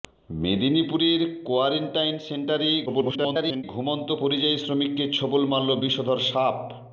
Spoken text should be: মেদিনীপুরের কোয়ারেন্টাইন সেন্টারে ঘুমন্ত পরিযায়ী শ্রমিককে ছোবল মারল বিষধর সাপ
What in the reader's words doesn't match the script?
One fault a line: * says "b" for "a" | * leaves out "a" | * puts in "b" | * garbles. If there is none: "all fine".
* garbles